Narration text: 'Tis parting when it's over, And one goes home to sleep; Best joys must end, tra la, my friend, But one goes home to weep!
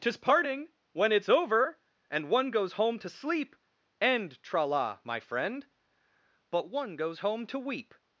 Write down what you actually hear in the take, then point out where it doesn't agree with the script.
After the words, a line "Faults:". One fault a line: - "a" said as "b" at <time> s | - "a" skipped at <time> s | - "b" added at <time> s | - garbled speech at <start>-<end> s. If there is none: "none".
'Tis parting when it's over, And one goes home to sleep; end, tra la, my friend, But one goes home to weep!
Faults:
- "Best joys must" skipped at 3.5 s